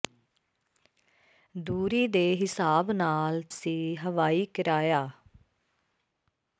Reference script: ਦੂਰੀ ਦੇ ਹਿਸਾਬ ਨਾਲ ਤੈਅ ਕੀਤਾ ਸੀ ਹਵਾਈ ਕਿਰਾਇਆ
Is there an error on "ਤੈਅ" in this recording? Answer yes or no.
yes